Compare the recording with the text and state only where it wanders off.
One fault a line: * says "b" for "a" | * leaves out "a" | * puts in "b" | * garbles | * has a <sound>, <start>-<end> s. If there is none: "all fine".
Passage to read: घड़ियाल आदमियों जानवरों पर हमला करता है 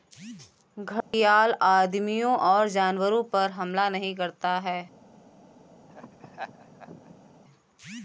* has a dropout, 1.0-1.1 s
* puts in "और"
* puts in "नहीं"
* has a laugh, 5.9-7.4 s